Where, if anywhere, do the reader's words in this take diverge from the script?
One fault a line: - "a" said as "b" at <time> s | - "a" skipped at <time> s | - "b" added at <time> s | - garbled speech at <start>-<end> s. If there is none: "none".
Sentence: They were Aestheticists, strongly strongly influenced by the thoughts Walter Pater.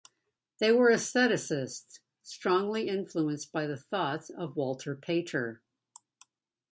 - "strongly" skipped at 2.9 s
- "of" added at 4.3 s